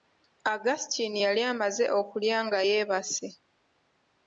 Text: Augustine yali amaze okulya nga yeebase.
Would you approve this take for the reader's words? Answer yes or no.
yes